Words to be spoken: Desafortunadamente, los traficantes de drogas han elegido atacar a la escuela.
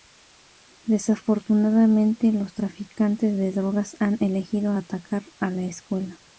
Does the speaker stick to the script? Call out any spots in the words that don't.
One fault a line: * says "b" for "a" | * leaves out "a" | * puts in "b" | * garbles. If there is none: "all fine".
all fine